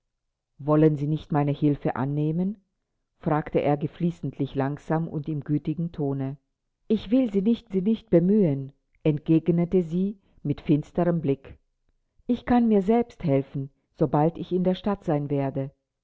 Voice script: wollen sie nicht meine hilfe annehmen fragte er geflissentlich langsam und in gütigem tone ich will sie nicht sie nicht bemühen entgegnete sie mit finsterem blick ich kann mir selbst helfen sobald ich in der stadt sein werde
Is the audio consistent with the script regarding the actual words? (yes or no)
yes